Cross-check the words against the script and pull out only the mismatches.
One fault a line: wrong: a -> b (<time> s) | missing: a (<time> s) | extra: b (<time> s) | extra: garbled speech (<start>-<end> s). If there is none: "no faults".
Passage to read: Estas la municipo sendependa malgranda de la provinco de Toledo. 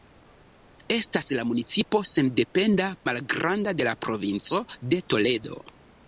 no faults